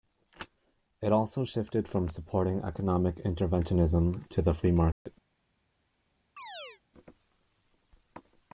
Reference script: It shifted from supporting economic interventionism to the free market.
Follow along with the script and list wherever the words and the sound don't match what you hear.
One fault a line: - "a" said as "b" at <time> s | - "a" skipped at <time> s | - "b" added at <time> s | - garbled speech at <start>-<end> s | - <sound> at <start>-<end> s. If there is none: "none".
- "also" added at 1.1 s
- dropout at 4.9-5.1 s
- chirp at 6.4-6.8 s